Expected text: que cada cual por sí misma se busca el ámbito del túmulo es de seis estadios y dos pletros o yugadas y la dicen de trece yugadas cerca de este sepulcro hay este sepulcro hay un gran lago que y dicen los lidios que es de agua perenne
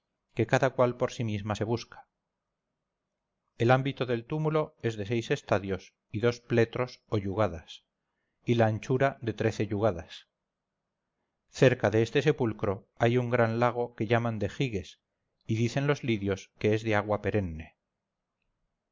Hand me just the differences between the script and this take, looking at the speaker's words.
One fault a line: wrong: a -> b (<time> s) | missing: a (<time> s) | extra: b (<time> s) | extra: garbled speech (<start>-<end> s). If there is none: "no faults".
wrong: dicen -> anchura (8.7 s)
missing: este sepulcro hay (13.2 s)
extra: llaman de giges (14.0 s)